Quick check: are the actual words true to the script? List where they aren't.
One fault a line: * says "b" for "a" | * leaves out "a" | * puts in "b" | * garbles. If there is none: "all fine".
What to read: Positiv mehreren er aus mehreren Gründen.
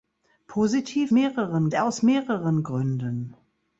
all fine